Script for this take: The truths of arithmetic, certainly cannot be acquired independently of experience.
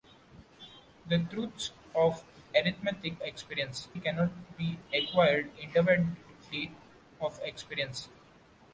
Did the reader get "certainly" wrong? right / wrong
wrong